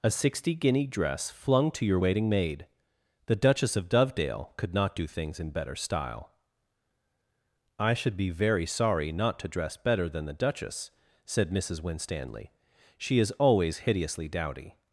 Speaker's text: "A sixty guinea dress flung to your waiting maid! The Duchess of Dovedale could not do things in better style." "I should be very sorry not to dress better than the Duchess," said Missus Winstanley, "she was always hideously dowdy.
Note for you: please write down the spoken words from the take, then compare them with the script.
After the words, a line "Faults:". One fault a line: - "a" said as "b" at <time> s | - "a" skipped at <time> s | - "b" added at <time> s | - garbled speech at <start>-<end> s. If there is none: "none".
"A sixty guinea dress flung to your waiting maid! The Duchess of Dovedale could not do things in better style." "I should be very sorry not to dress better than the Duchess," said Missus Winstanley, "she is always hideously dowdy.
Faults:
- "was" said as "is" at 13.2 s